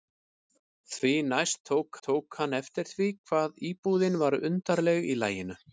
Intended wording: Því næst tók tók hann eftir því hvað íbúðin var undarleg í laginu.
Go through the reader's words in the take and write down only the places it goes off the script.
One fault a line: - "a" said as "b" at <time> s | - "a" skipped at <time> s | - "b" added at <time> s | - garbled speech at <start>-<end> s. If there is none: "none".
none